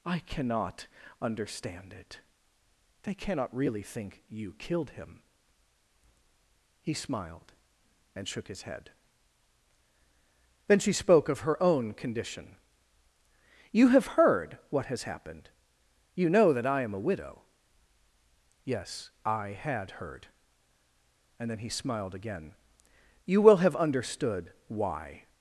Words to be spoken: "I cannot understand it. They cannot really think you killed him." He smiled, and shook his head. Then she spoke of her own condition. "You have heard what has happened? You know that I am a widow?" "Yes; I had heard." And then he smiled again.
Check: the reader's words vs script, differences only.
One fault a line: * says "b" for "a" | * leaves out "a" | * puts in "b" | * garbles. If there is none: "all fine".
* puts in "You will have understood why"